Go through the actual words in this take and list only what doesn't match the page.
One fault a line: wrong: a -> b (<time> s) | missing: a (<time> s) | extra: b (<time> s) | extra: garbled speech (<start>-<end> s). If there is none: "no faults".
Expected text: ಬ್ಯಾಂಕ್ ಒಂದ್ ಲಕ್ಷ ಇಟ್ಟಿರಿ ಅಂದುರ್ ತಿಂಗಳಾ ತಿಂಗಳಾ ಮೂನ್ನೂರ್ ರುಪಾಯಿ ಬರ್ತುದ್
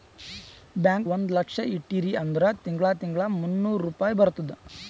no faults